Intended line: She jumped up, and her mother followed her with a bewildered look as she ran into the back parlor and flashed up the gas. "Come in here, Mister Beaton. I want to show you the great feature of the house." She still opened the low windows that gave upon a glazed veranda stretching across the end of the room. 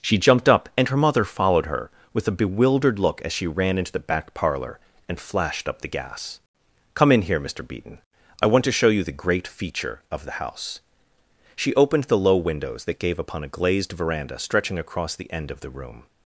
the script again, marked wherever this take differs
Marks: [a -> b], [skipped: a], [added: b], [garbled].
She jumped up, and her mother followed her with a bewildered look as she ran into the back parlor and flashed up the gas. "Come in here, Mister Beaton. I want to show you the great feature of the house." She [skipped: still] opened the low windows that gave upon a glazed veranda stretching across the end of the room.